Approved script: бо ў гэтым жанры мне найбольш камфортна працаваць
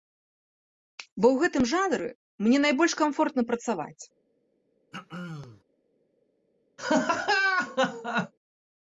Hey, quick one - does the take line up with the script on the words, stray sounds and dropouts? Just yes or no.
no